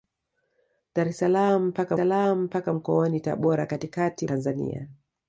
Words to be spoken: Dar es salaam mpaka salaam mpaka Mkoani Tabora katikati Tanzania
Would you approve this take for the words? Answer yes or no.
yes